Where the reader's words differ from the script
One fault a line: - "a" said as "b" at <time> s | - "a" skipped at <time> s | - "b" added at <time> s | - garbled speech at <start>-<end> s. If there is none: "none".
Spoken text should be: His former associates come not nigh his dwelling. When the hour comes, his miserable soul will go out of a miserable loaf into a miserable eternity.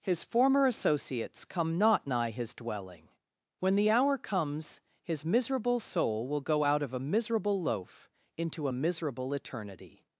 none